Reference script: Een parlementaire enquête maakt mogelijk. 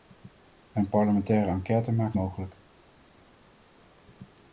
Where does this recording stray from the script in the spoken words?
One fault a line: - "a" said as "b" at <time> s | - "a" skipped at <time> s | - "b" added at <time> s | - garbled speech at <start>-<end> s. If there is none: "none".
none